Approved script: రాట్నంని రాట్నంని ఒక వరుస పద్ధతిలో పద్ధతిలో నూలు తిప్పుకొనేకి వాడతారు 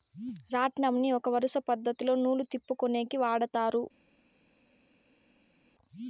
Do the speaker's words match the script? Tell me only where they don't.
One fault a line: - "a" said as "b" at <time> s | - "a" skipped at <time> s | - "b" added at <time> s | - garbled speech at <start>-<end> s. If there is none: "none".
- "రాట్నంని" skipped at 1.1 s
- "పద్ధతిలో" skipped at 2.1 s